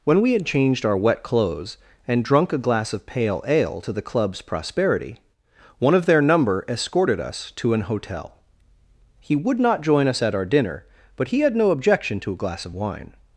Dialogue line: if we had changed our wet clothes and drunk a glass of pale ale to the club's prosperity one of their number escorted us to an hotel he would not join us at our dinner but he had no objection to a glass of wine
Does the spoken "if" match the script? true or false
false